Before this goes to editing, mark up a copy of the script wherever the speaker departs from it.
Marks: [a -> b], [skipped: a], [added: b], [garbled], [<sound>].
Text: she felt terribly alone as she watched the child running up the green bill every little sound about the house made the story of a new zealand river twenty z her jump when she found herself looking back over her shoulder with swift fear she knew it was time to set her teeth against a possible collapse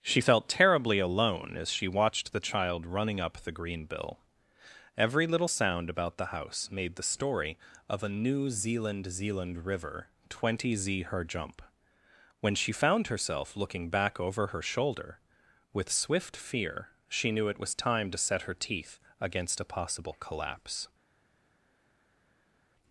she felt terribly alone as she watched the child running up the green bill every little sound about the house made the story of a new zealand [added: zealand] river twenty z her jump when she found herself looking back over her shoulder with swift fear she knew it was time to set her teeth against a possible collapse